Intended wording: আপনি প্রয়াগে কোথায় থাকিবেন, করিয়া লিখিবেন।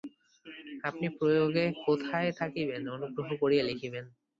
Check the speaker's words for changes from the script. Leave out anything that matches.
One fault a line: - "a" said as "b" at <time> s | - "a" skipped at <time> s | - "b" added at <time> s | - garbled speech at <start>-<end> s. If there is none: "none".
- "অনুগ্রহ" added at 2.9 s